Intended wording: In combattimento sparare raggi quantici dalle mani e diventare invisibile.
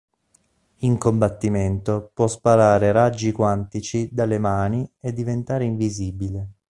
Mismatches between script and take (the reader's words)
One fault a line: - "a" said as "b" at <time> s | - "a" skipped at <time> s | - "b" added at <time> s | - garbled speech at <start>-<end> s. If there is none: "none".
- "può" added at 2.1 s